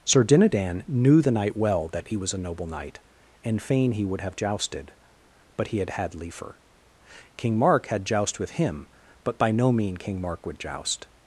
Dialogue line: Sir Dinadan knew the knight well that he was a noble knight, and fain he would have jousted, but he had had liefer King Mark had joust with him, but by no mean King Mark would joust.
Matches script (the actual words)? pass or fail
pass